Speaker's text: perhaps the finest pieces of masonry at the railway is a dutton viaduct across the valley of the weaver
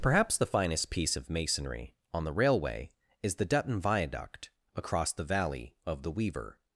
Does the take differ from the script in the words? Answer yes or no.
yes